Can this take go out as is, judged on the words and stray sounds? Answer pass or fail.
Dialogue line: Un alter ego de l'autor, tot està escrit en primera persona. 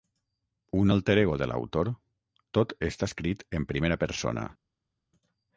pass